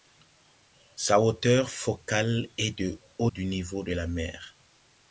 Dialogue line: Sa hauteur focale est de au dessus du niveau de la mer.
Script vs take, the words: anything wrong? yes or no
yes